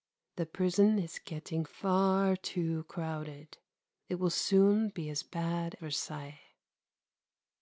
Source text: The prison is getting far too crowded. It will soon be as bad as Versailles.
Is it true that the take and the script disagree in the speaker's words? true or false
true